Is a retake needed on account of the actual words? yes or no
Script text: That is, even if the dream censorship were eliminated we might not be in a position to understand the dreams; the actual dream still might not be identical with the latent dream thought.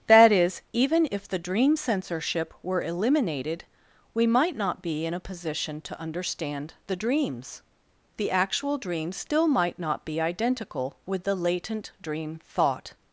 no